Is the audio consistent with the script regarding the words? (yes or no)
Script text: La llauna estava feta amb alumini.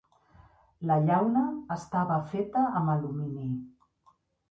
yes